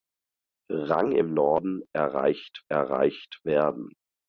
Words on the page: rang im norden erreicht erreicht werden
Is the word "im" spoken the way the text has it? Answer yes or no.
yes